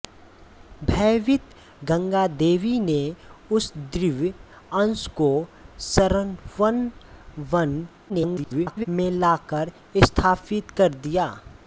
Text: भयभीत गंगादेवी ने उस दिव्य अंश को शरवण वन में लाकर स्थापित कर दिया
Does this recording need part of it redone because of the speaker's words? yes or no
yes